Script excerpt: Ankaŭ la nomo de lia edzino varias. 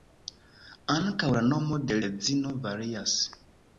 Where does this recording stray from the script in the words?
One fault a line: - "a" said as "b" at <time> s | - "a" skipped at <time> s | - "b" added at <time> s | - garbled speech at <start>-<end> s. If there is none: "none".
- "lia" skipped at 2.0 s